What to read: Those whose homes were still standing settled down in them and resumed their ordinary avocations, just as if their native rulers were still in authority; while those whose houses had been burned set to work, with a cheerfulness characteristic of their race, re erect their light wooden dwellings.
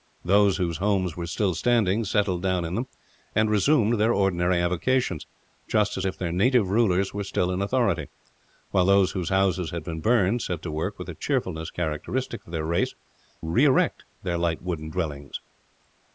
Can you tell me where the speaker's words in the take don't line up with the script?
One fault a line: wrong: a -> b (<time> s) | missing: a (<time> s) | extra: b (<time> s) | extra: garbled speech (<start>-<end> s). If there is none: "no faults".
no faults